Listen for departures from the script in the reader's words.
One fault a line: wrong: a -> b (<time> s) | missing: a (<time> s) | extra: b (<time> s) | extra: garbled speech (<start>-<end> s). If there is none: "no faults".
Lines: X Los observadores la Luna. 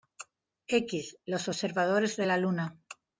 extra: de (2.2 s)